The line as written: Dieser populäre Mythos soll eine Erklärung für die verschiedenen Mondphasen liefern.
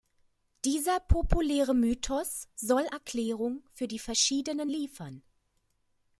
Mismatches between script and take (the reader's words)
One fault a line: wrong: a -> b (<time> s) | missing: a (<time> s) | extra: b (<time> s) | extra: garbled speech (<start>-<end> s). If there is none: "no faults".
missing: eine (2.9 s)
missing: Mondphasen (4.7 s)